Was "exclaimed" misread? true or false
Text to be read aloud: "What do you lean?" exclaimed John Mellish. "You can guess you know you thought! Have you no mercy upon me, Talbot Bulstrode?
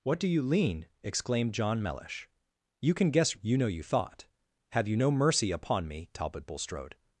false